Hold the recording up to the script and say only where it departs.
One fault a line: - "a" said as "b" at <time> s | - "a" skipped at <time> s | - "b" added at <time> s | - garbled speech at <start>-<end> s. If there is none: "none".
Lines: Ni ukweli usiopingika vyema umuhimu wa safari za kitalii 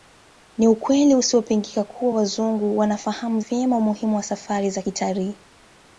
- "kuwa Wazungu wanafahamu" added at 1.8 s